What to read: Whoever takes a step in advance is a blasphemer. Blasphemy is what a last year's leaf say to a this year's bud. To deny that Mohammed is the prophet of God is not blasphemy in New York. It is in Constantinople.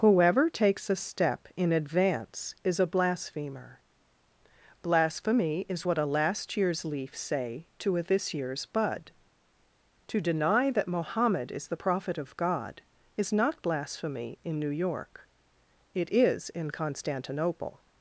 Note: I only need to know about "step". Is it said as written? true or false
true